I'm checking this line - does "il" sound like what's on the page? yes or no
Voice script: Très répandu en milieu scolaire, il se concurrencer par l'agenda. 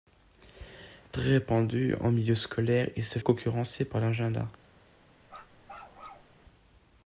yes